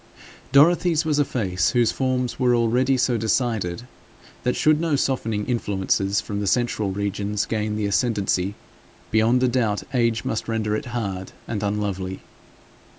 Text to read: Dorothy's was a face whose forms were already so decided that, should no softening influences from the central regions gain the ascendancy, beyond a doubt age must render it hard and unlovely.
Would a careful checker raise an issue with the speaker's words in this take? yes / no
no